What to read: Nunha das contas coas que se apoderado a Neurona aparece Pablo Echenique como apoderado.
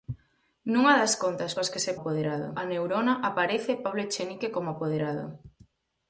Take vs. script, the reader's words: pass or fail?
pass